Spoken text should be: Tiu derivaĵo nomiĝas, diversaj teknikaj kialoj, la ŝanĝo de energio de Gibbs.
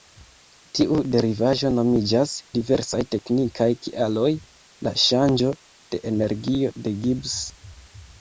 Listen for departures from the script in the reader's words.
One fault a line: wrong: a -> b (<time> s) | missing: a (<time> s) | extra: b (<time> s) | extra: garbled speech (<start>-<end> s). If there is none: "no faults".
no faults